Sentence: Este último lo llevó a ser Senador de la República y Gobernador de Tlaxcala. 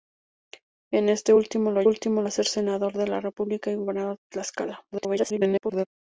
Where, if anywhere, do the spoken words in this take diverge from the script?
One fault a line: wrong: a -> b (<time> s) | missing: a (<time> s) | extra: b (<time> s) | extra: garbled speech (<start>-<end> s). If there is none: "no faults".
wrong: llevó -> último (1.8 s)
extra: garbled speech (4.9-5.9 s)